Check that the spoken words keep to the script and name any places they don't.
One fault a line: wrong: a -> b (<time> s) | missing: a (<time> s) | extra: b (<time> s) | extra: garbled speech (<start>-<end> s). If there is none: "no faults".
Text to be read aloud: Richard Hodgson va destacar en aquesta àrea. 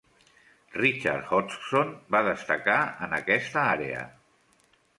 no faults